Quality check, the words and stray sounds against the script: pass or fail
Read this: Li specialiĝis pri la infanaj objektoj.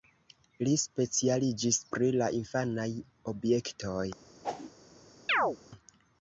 fail